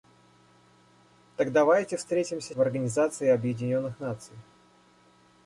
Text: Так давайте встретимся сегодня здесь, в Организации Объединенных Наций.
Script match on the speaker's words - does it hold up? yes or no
no